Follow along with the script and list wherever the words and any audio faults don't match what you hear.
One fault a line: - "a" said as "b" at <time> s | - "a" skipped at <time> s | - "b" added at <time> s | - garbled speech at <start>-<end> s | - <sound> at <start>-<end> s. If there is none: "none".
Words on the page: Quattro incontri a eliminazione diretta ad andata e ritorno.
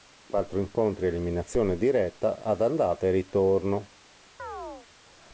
- chirp at 4.4-4.9 s